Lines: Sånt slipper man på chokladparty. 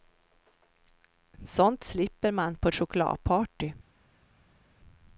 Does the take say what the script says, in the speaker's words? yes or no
yes